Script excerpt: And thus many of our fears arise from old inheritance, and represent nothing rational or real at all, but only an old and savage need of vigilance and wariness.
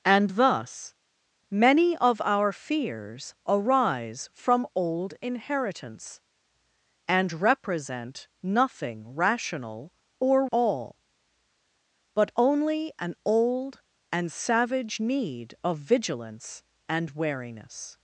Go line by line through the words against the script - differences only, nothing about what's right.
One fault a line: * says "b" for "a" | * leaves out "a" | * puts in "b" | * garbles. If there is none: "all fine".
* leaves out "real at"